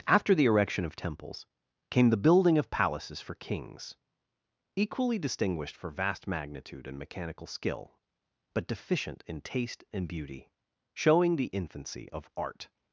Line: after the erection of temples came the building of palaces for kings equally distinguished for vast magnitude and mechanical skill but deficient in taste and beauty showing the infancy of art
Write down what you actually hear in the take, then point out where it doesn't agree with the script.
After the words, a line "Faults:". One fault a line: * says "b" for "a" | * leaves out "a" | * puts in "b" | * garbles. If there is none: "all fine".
after the erection of temples came the building of palaces for kings equally distinguished for vast magnitude and mechanical skill but deficient in taste and beauty showing the infancy of art
Faults:
all fine